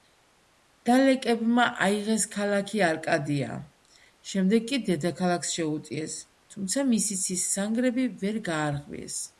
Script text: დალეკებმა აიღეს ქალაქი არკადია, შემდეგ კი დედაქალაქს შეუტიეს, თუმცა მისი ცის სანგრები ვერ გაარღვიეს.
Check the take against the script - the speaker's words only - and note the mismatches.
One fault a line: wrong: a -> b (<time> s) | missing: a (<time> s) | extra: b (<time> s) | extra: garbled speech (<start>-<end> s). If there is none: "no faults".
no faults